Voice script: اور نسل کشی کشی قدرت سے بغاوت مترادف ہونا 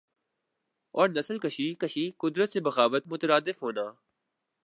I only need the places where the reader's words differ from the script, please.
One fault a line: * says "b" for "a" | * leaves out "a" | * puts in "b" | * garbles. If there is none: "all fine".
all fine